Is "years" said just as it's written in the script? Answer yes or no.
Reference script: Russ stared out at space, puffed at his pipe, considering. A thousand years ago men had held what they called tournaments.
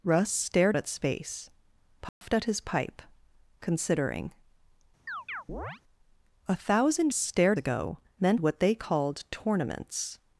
no